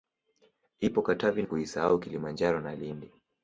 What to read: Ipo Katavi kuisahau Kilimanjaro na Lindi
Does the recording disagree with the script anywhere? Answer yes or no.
no